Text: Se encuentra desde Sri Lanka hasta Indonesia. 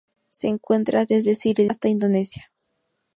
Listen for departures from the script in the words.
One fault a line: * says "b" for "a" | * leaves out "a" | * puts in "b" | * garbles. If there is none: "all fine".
* leaves out "Lanka"